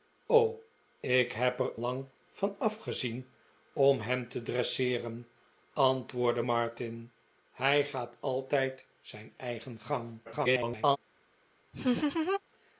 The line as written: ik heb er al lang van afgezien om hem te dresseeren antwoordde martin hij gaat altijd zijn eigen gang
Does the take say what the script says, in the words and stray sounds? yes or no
no